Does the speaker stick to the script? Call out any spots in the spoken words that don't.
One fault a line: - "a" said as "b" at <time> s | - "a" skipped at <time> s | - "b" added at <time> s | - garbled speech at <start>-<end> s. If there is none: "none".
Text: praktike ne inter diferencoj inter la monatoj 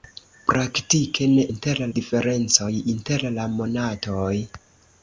none